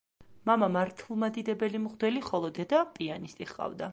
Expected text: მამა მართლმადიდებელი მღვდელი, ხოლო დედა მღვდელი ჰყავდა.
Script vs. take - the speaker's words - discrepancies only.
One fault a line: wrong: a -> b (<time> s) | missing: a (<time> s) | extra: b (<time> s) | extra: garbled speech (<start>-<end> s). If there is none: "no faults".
wrong: მღვდელი -> პიანისტი (3.0 s)